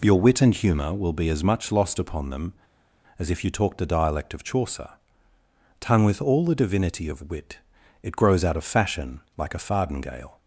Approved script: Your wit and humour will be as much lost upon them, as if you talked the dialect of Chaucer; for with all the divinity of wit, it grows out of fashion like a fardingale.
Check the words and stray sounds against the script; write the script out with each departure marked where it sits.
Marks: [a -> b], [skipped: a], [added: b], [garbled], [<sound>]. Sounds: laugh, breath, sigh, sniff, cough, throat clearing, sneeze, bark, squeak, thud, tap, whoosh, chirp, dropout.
Your wit and humour will be as much lost upon them, as if you talked the dialect of Chaucer; [for -> tongue] with all the divinity of wit, it grows out of fashion like a fardingale.